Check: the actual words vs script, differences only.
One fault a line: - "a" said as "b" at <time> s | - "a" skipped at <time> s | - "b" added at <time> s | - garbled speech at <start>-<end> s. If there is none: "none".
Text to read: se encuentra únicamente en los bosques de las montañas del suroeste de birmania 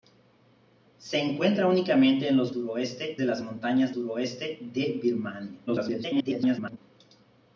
- "bosques" said as "suroeste" at 2.5 s
- "del" skipped at 4.0 s
- garbled speech at 5.7-6.8 s